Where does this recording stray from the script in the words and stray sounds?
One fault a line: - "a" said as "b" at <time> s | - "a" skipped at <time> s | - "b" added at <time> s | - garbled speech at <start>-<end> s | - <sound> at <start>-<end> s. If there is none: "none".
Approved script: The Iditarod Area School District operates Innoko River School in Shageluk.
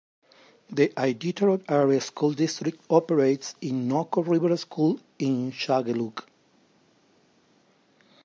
none